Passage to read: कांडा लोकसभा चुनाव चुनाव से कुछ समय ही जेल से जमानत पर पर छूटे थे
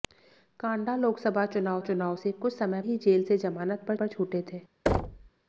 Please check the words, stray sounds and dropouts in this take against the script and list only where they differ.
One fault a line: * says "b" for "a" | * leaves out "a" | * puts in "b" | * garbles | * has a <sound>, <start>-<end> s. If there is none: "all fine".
* has a thud, 4.9-5.3 s